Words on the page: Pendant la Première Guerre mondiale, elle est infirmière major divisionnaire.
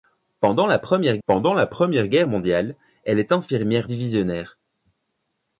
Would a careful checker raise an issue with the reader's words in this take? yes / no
yes